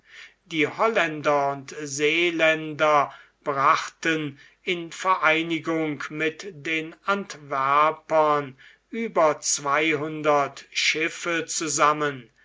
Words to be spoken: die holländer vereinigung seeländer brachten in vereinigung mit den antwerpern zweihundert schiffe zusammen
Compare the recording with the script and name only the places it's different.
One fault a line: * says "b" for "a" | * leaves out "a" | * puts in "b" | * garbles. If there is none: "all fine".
* says "und" for "vereinigung"
* puts in "über"